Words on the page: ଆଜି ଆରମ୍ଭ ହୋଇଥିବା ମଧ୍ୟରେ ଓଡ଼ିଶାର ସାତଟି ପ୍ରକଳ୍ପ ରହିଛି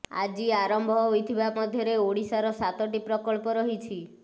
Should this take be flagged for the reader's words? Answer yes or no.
no